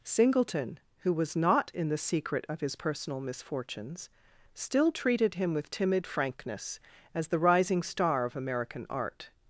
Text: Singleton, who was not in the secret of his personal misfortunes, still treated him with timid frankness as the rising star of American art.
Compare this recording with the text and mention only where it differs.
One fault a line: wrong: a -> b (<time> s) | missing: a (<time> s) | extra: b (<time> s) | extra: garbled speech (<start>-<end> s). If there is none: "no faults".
no faults